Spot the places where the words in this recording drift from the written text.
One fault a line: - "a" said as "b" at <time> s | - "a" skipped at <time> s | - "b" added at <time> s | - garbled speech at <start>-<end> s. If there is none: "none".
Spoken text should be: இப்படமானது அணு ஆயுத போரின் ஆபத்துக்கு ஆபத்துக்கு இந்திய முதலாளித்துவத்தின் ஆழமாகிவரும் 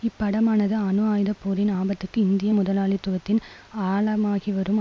- "ஆபத்துக்கு" skipped at 2.2 s